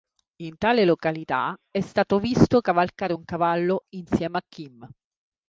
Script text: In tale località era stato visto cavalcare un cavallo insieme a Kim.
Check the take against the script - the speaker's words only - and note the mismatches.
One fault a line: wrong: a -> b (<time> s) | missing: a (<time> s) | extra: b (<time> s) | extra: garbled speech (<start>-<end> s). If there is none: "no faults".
wrong: era -> è (1.7 s)